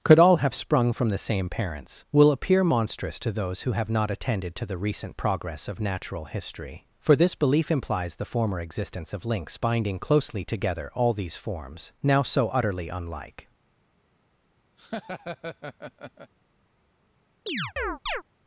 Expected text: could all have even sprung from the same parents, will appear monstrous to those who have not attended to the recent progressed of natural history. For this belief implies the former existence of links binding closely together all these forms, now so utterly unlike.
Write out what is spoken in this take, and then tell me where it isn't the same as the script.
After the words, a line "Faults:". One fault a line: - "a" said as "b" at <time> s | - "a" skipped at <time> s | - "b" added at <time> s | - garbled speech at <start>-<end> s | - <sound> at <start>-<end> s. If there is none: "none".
could all have sprung from the same parents, will appear monstrous to those who have not attended to the recent progress of natural history. For this belief implies the former existence of links binding closely together all these forms, now so utterly unlike.
Faults:
- "even" skipped at 0.6 s
- "progressed" said as "progress" at 5.2 s
- laugh at 14.8-16.3 s
- chirp at 17.5-18.2 s